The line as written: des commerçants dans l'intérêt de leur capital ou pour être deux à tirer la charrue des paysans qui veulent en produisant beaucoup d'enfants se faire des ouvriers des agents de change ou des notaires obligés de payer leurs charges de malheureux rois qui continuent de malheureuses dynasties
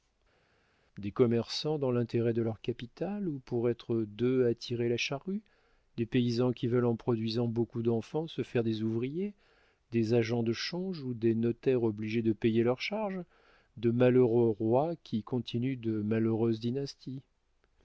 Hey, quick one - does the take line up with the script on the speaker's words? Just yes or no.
yes